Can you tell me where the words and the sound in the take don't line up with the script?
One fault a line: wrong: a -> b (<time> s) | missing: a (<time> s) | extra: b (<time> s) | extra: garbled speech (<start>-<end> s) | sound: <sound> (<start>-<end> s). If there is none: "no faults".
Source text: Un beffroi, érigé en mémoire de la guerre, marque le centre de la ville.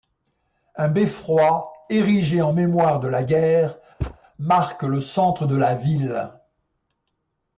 sound: thud (4.0-4.2 s)